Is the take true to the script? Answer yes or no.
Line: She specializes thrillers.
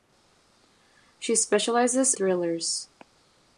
yes